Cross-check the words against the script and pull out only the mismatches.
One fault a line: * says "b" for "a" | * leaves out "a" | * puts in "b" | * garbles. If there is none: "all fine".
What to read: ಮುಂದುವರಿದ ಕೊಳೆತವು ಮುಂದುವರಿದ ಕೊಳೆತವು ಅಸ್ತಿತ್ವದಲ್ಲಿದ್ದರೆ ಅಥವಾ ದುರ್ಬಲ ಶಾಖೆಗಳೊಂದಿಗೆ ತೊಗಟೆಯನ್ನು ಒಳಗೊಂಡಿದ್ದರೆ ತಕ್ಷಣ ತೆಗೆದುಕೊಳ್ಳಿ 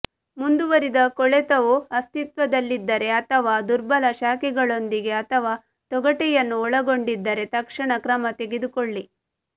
* leaves out "ಮುಂದುವರಿದ ಕೊಳೆತವು"
* puts in "ಅಥವಾ"
* puts in "ಕ್ರಮ"